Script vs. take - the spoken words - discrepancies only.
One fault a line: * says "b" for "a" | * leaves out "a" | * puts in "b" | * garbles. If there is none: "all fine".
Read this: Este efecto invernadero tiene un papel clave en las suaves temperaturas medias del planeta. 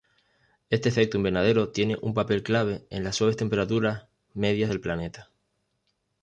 all fine